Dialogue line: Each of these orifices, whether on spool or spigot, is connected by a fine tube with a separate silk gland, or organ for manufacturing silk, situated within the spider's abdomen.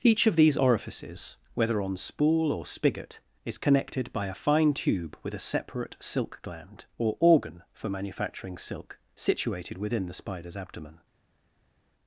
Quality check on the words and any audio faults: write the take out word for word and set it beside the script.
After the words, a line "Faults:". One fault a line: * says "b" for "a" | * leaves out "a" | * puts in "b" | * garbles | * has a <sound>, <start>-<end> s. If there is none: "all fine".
Each of these orifices, whether on spool or spigot, is connected by a fine tube with a separate silk gland, or organ for manufacturing silk, situated within the spider's abdomen.
Faults:
all fine